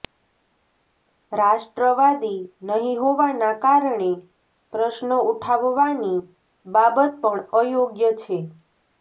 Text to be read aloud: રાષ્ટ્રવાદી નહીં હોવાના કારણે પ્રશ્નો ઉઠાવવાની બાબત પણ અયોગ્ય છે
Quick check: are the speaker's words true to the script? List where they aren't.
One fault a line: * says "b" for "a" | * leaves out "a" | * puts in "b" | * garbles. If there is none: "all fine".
all fine